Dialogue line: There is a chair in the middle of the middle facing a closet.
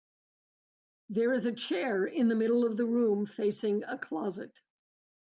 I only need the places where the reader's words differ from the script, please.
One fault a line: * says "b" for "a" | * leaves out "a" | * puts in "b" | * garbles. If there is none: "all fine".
* says "room" for "middle"